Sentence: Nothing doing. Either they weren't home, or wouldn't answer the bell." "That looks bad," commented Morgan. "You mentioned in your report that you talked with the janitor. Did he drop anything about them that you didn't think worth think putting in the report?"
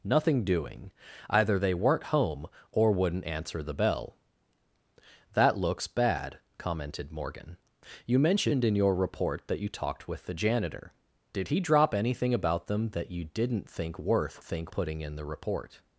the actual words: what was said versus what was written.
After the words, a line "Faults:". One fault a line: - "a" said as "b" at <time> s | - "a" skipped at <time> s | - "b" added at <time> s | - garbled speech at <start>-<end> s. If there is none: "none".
Nothing doing. Either they weren't home, or wouldn't answer the bell." "That looks bad," commented Morgan. "You mentioned in your report that you talked with the janitor. Did he drop anything about them that you didn't think worth think putting in the report?"
Faults:
none